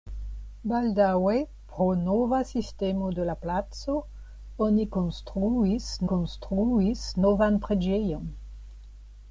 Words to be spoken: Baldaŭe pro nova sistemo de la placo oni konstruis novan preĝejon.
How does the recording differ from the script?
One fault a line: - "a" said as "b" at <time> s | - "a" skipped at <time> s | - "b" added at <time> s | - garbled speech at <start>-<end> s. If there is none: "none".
- "konstruis" added at 6.1 s